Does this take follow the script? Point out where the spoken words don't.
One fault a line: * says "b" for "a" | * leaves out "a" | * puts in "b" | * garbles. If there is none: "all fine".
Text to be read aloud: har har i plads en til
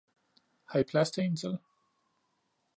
* leaves out "har"
* puts in "til"